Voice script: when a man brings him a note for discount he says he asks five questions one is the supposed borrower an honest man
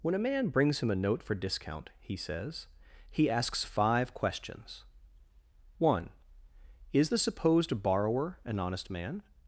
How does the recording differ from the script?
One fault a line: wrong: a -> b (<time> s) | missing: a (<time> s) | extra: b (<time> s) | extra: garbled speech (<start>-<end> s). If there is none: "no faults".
no faults